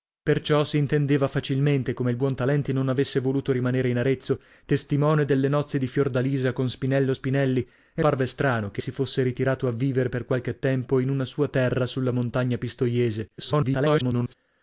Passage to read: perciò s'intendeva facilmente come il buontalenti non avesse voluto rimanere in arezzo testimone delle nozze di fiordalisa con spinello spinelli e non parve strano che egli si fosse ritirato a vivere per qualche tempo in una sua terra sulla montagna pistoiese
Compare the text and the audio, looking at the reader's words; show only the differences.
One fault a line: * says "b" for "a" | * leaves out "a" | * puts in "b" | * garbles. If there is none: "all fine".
* leaves out "non"
* leaves out "egli"
* garbles